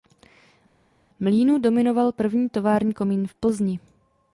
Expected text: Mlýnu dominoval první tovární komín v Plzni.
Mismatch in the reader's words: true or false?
false